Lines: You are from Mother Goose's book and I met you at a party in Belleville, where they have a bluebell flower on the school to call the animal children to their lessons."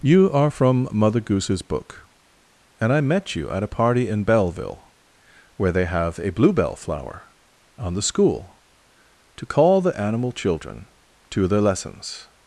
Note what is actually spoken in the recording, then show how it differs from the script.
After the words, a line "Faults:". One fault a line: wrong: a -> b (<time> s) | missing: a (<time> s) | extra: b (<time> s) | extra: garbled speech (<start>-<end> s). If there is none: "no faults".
You are from Mother Goose's book and I met you at a party in Belleville, where they have a bluebell flower on the school to call the animal children to their lessons."
Faults:
no faults